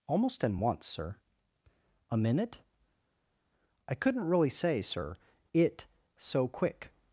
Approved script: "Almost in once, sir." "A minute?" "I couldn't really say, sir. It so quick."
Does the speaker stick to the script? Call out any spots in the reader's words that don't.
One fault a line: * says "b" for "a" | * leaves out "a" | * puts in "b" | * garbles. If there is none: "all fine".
all fine